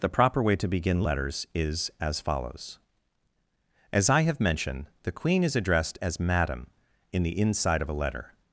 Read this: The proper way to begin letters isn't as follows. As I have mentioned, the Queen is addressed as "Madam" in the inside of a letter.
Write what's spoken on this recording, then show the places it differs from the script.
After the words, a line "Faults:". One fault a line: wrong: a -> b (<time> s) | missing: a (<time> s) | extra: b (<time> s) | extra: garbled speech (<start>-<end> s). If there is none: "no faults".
The proper way to begin letters is as follows. As I have mentioned, the Queen is addressed as "Madam" in the inside of a letter.
Faults:
wrong: isn't -> is (1.5 s)